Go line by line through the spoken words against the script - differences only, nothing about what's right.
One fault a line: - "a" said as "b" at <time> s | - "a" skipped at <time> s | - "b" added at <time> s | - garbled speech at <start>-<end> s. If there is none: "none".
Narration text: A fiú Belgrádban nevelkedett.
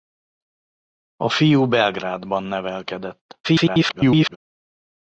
- garbled speech at 3.4-4.4 s